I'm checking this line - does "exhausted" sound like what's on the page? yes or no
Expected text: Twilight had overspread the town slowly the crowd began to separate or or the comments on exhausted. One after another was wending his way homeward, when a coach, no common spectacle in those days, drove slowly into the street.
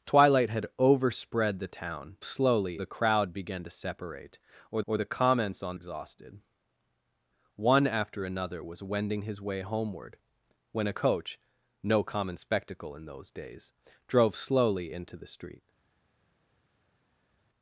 yes